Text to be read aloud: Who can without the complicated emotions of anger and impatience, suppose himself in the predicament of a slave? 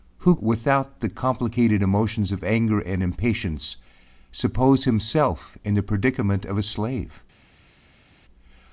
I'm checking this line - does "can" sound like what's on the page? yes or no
no